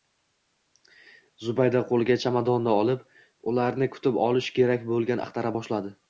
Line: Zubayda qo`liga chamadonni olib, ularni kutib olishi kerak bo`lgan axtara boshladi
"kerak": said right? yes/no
yes